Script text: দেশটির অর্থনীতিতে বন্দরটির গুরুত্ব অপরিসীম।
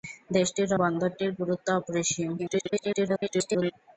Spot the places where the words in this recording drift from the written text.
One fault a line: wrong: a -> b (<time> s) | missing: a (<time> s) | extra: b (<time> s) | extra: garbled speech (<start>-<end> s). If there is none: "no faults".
missing: অর্থনীতিতে (0.7 s)
extra: garbled speech (2.4-3.7 s)